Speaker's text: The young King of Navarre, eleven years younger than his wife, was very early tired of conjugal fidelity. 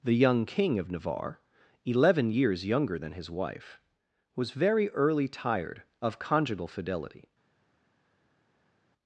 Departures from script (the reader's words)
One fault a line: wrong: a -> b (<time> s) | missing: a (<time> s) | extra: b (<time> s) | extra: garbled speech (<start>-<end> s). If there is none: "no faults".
no faults